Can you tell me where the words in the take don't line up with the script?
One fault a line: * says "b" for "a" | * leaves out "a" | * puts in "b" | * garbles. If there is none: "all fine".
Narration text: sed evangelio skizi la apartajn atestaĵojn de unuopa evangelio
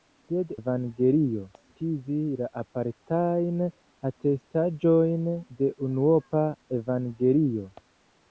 all fine